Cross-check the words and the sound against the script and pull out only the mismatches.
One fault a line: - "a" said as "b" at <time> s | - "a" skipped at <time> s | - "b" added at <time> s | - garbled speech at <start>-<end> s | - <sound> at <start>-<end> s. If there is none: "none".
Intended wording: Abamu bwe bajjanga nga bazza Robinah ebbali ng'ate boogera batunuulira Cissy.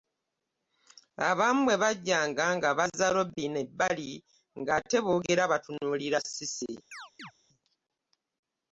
- chirp at 6.9-7.3 s